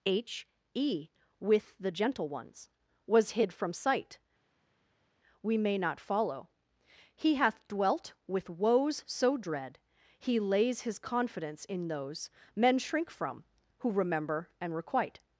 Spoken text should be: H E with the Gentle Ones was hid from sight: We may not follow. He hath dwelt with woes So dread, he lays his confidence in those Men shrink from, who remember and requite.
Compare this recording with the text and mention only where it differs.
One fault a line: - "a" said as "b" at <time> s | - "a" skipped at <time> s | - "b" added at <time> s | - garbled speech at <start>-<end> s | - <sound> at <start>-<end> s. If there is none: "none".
none